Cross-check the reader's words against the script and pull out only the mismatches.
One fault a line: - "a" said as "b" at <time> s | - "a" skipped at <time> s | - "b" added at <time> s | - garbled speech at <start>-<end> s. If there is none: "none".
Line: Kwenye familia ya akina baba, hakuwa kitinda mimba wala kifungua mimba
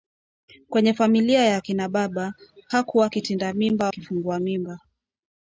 - "wala" skipped at 3.9 s